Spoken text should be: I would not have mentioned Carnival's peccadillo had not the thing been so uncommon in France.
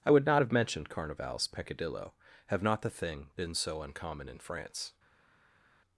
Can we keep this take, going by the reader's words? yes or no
no